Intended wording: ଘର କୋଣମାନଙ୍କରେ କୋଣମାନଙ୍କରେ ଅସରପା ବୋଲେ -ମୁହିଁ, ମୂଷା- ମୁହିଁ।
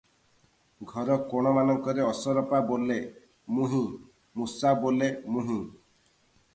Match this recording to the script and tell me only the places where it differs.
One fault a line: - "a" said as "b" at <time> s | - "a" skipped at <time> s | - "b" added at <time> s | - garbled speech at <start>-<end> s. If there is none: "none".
- "କୋଣମାନଙ୍କରେ" skipped at 2.1 s
- "ବୋଲେ" added at 4.8 s